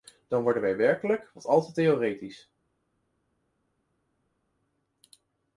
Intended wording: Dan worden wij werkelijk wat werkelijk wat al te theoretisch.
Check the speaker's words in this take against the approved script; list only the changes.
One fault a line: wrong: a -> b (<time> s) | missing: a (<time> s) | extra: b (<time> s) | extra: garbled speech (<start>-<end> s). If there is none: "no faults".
missing: werkelijk wat (1.4 s)